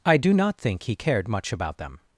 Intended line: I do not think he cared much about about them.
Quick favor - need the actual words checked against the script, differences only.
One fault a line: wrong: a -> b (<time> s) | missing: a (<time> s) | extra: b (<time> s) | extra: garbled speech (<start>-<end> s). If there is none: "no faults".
missing: about (1.8 s)